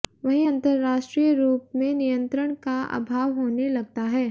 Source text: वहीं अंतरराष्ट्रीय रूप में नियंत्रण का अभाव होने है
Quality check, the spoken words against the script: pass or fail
fail